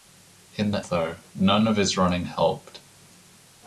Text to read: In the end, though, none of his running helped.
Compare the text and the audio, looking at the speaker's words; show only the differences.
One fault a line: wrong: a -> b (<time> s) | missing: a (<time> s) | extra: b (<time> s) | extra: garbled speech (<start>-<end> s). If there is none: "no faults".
missing: end (0.8 s)